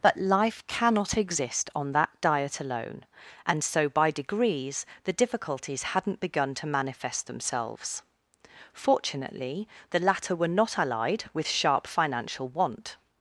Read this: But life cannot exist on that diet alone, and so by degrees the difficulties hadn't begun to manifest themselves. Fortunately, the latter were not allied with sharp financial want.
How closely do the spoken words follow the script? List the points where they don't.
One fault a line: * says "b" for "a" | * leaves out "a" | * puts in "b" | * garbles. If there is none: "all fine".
all fine